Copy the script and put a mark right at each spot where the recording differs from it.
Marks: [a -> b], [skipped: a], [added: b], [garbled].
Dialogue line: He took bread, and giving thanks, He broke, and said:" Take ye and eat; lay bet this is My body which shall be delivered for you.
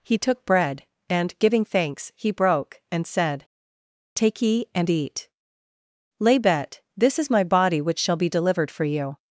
He took bread, and giving thanks, He broke, and said:" Take ye and eat; lay bet this is My body which shall be delivered for you.